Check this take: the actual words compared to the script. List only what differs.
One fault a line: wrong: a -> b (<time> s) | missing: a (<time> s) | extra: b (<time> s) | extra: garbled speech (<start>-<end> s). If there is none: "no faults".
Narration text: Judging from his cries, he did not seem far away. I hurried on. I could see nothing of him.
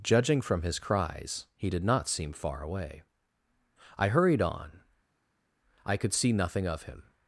no faults